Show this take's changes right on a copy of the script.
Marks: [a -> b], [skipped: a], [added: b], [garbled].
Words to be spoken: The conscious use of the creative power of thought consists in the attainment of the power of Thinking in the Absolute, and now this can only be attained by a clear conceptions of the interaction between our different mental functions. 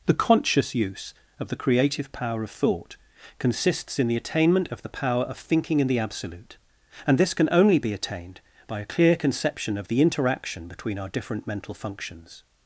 The conscious use of the creative power of thought consists in the attainment of the power of Thinking in the Absolute, and [skipped: now] this can only be attained by a clear [conceptions -> conception] of the interaction between our different mental functions.